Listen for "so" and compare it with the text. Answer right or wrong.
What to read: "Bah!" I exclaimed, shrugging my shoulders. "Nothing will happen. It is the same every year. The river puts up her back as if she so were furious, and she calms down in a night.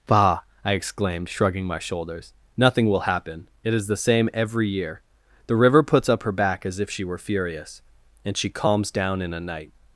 wrong